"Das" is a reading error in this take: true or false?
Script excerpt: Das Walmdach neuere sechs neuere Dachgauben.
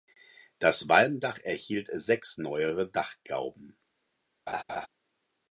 false